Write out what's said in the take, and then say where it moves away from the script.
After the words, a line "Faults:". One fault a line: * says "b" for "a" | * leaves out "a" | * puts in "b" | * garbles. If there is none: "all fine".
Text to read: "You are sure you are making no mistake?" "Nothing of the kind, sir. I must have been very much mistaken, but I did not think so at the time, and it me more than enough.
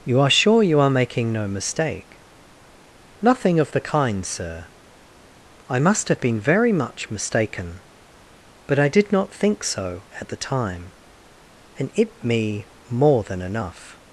"You are sure you are making no mistake?" "Nothing of the kind, sir. I must have been very much mistaken, but I did not think so at the time, and it me more than enough.
Faults:
all fine